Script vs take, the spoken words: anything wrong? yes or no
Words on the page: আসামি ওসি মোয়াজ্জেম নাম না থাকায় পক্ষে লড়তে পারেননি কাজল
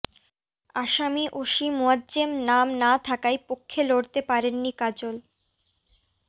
no